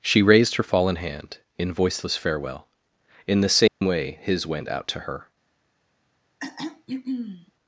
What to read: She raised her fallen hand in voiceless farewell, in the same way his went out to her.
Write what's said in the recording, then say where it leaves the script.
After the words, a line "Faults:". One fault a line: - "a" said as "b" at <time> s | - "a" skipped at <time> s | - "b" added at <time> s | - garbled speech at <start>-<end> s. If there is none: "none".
She raised her fallen hand in voiceless farewell, in the same way his went out to her.
Faults:
none